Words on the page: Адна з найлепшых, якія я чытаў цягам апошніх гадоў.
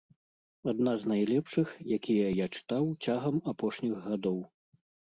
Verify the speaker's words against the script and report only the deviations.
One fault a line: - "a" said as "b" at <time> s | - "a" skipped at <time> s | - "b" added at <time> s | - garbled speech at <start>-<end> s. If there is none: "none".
none